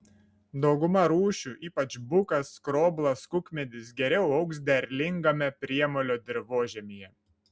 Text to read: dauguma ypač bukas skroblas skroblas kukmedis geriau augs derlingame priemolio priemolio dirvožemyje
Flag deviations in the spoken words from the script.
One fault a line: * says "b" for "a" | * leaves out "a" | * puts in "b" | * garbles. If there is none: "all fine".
* puts in "rūšių"
* leaves out "skroblas"
* leaves out "priemolio"